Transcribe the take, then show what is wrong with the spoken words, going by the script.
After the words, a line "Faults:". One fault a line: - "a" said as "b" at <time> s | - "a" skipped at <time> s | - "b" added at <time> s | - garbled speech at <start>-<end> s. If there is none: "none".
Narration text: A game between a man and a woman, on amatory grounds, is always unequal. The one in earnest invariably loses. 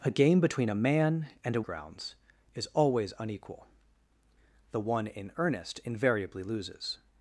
A game between a man and a grounds, is always unequal. The one in earnest invariably loses.
Faults:
- "woman on amatory" skipped at 1.6 s